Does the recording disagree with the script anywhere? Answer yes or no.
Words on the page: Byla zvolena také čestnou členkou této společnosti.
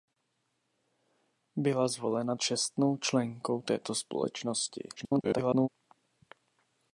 yes